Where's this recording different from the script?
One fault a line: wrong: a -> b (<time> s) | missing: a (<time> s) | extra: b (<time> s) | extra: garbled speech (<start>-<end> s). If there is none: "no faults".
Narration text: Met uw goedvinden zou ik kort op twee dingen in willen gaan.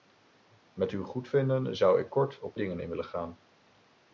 missing: twee (2.6 s)